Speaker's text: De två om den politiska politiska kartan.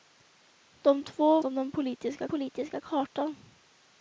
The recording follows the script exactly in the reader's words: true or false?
true